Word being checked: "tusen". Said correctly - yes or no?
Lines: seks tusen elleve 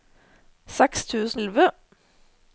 yes